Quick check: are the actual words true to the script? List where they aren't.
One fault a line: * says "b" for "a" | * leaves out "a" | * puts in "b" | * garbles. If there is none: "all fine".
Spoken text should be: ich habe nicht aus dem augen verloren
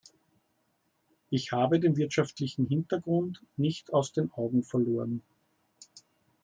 * puts in "den wirtschaftlichen hintergrund"
* says "den" for "dem"